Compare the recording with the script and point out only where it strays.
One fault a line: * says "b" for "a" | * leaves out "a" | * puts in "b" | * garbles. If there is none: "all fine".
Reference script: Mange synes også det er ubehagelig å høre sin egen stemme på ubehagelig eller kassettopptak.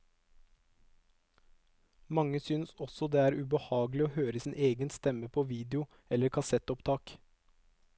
* says "video" for "ubehagelig"